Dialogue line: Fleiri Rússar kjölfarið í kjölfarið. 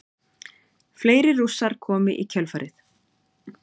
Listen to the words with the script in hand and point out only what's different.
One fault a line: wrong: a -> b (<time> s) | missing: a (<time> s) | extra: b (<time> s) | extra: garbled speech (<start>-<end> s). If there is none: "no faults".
wrong: kjölfarið -> komu (1.9 s)